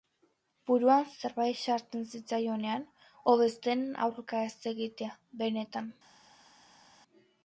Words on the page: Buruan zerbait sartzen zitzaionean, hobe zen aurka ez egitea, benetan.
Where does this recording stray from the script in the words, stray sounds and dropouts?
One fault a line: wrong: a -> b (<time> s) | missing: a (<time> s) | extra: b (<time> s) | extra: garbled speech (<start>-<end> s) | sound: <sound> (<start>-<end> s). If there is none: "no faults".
no faults